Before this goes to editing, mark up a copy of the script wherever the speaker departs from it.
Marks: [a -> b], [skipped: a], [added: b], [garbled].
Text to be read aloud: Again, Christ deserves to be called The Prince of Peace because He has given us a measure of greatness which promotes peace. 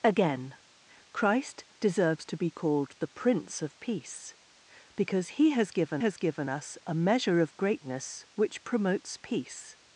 Again, Christ deserves to be called The Prince of Peace because He has given [added: has given] us a measure of greatness which promotes peace.